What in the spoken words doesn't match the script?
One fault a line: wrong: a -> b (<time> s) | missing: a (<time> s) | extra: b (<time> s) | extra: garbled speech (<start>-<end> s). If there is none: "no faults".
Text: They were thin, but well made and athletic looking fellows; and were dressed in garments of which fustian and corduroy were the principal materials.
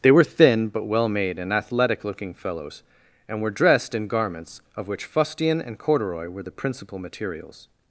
no faults